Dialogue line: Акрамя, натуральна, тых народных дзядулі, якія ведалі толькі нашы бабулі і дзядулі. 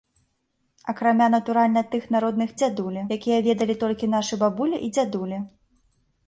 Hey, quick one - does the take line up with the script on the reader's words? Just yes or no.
yes